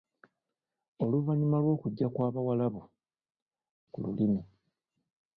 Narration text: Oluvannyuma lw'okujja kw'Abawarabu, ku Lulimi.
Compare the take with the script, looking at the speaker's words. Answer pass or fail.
pass